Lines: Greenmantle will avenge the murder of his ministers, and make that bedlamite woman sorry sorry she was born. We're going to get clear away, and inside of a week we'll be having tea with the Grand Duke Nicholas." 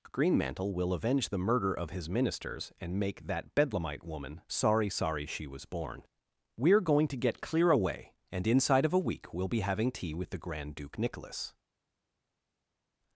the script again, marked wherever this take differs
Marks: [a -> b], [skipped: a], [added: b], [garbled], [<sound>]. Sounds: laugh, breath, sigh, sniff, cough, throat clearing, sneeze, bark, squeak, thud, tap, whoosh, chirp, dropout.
Greenmantle will avenge the murder of his ministers, and make that bedlamite woman sorry sorry she was born. We're going to get clear away, and inside of a week we'll be having tea with the Grand Duke Nicholas."